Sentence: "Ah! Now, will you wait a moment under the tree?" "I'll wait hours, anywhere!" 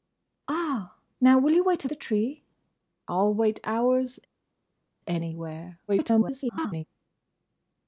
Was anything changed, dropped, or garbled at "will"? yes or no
no